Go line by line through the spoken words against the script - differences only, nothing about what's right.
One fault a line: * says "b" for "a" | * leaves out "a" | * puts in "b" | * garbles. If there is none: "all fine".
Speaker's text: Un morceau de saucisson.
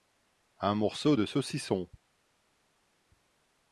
all fine